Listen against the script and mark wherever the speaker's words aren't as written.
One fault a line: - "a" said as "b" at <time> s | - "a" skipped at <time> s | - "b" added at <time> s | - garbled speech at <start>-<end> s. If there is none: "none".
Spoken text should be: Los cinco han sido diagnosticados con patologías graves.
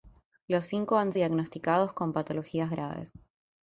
- "sido" skipped at 1.1 s